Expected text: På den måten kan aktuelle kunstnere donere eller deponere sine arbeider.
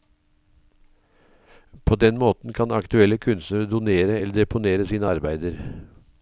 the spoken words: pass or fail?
pass